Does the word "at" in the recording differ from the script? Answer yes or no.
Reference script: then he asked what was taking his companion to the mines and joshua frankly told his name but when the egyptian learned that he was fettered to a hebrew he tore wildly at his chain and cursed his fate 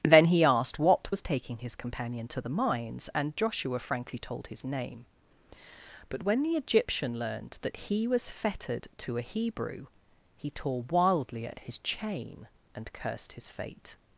no